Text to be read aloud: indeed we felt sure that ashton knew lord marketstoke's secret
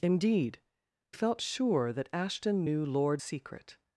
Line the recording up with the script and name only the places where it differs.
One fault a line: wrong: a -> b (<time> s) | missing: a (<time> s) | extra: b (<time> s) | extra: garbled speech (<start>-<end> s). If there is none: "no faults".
missing: we (0.6 s)
missing: marketstoke's (3.2 s)